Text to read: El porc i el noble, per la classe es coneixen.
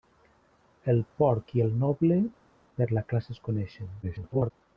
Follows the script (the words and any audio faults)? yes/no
no